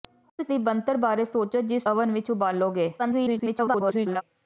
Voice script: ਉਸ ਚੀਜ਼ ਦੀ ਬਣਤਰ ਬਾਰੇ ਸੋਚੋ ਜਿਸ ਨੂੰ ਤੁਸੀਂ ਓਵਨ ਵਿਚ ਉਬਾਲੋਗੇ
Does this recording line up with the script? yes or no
no